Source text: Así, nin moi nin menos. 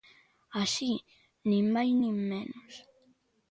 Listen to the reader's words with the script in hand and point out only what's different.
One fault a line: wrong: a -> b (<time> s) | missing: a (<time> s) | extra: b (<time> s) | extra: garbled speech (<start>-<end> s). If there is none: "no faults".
wrong: moi -> máis (1.8 s)